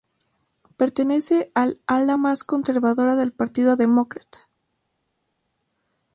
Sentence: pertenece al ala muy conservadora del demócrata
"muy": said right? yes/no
no